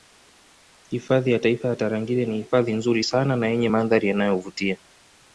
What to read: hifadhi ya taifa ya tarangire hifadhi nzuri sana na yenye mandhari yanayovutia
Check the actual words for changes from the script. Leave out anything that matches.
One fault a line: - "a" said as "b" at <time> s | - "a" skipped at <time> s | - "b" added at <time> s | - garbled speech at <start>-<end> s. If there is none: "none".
- "ni" added at 2.2 s